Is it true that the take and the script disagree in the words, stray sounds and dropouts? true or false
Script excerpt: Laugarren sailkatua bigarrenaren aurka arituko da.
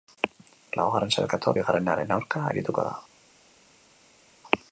false